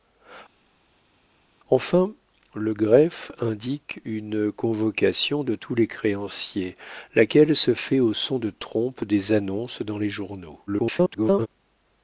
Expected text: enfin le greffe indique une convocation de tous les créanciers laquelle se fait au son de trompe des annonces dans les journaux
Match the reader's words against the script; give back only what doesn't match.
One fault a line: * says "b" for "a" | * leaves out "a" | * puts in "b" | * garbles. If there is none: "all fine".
* garbles